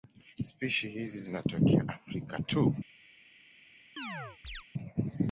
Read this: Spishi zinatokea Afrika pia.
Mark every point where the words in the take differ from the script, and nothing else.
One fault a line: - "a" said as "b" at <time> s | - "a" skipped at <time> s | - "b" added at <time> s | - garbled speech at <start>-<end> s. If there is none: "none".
- "hizi" added at 0.9 s
- "pia" said as "tu" at 2.4 s